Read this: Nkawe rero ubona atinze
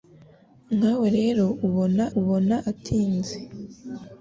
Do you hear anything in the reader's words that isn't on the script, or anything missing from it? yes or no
yes